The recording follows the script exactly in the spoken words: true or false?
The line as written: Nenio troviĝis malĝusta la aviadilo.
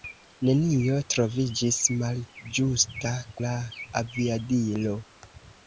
true